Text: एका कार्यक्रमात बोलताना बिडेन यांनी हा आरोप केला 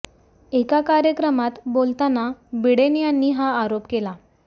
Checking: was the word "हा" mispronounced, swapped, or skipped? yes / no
no